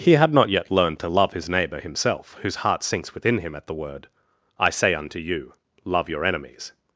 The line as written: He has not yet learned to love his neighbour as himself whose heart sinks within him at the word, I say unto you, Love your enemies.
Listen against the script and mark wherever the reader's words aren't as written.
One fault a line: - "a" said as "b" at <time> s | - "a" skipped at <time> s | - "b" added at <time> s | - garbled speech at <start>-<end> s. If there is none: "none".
- "has" said as "had" at 0.1 s
- "as" skipped at 1.8 s